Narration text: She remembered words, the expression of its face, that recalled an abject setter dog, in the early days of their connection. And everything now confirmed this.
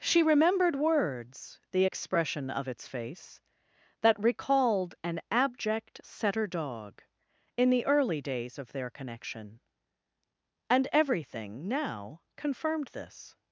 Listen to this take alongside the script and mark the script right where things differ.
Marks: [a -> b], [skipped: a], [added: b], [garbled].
She remembered words, the expression of its face, that recalled an abject setter dog, in the early days of their connection. And everything now confirmed this.